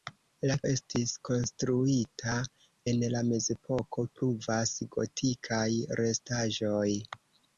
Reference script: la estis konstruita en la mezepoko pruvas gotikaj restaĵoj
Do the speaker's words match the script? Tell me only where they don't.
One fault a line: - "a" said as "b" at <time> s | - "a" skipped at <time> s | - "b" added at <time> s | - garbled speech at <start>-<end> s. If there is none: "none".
none